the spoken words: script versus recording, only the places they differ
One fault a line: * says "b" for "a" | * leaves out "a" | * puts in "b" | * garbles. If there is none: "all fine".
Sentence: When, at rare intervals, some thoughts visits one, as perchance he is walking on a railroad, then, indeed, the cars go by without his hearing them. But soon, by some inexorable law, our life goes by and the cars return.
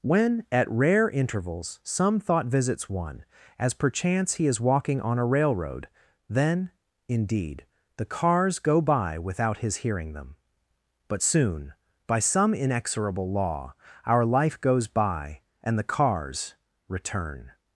* says "thought" for "thoughts"